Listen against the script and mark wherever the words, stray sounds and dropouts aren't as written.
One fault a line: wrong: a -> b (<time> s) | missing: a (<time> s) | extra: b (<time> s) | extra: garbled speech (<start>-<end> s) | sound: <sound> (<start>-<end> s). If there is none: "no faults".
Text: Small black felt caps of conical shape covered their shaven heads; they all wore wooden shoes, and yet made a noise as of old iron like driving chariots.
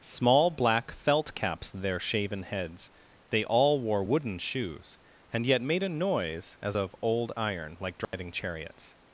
missing: of conical shape covered (1.7 s)
sound: dropout (8.0-8.1 s)